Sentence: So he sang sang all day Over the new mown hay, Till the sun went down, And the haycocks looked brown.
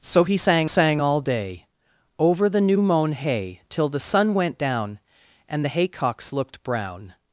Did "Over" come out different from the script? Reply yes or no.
no